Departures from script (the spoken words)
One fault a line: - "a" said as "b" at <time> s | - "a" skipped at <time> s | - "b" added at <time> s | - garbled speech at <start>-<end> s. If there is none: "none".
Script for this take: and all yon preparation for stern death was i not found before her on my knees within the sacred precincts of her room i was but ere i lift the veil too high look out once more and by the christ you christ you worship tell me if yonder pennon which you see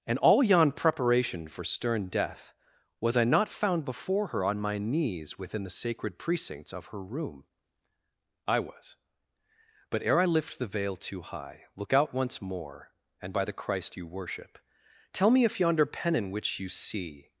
- "christ you" skipped at 14.1 s